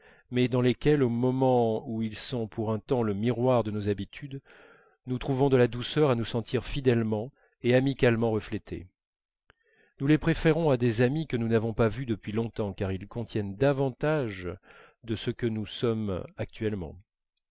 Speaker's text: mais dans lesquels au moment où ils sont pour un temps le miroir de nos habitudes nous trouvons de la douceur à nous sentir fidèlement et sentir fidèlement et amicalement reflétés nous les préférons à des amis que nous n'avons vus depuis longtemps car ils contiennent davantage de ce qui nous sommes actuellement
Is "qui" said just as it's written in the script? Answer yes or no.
no